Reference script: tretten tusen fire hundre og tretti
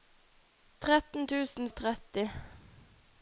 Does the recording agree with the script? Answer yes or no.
no